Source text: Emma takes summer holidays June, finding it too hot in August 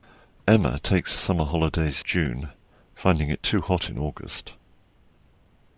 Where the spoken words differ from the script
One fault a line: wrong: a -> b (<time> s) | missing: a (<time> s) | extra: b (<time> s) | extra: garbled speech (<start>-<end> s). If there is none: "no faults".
no faults